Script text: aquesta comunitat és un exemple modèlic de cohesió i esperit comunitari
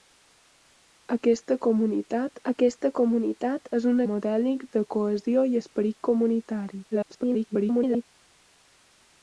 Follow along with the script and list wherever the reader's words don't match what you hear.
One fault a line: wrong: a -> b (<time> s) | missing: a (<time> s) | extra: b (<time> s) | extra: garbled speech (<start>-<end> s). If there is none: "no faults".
extra: aquesta comunitat (2.5 s)
missing: exemple (4.0 s)
extra: garbled speech (6.9-8.1 s)